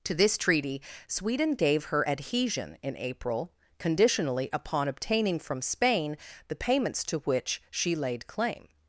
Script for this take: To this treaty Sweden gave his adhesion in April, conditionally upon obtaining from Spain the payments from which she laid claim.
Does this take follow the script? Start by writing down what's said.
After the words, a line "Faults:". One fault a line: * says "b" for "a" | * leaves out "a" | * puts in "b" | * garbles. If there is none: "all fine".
To this treaty Sweden gave her adhesion in April, conditionally upon obtaining from Spain the payments to which she laid claim.
Faults:
* says "her" for "his"
* says "to" for "from"